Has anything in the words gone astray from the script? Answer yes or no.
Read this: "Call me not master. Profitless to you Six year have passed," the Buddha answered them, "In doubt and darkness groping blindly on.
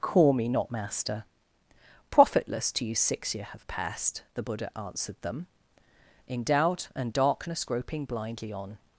no